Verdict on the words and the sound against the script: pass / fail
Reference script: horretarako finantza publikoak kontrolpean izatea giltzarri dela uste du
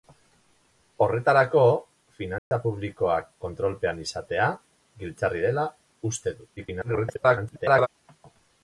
fail